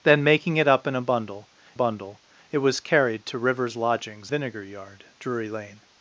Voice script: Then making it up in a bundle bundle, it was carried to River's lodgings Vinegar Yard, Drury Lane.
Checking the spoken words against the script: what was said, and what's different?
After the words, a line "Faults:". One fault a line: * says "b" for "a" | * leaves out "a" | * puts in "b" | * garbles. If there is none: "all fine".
Then making it up in a bundle bundle, it was carried to River's lodgings Vinegar Yard, Drury Lane.
Faults:
all fine